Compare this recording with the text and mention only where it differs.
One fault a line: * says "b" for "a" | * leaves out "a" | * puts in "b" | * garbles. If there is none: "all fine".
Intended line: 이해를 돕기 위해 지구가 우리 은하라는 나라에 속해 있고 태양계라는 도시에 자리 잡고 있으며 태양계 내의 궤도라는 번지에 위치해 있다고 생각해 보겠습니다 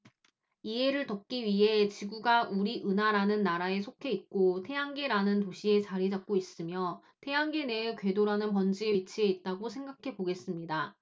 all fine